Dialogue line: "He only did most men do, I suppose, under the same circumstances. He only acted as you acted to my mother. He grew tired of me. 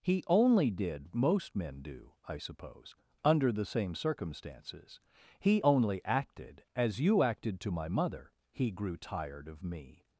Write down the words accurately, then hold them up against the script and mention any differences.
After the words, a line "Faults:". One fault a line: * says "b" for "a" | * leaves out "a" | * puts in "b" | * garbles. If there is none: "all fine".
"He only did most men do, I suppose, under the same circumstances. He only acted as you acted to my mother. He grew tired of me.
Faults:
all fine